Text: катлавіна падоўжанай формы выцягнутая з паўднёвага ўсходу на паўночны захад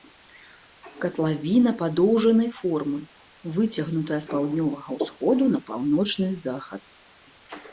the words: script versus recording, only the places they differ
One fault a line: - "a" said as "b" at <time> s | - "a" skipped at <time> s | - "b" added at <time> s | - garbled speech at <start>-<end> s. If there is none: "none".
none